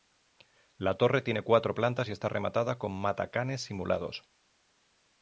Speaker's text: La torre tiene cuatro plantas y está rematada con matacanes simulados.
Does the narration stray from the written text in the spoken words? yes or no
no